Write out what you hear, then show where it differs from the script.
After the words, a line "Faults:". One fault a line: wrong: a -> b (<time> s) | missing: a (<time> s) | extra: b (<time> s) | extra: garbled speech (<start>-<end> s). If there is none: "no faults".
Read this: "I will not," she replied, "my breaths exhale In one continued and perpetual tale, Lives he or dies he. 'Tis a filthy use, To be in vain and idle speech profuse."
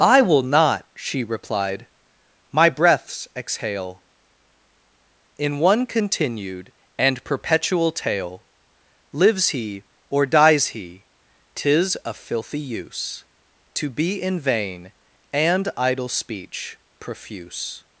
"I will not," she replied, "my breaths exhale In one continued and perpetual tale, Lives he or dies he. 'Tis a filthy use, To be in vain and idle speech profuse."
Faults:
no faults